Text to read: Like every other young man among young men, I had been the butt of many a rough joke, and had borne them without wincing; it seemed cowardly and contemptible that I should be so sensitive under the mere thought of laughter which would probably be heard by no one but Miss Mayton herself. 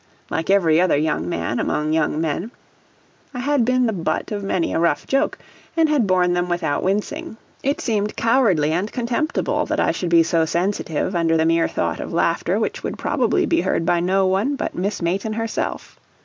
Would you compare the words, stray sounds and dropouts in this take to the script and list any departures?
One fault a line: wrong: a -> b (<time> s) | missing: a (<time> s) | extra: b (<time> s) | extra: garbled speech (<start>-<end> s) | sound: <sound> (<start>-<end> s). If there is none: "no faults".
no faults